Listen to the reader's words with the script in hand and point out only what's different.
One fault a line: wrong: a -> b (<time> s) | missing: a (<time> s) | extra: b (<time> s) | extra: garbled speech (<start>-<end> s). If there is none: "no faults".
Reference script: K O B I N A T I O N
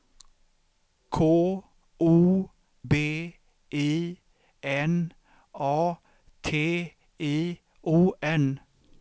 no faults